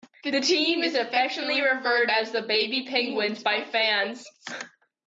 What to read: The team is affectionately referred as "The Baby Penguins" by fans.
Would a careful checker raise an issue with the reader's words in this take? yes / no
no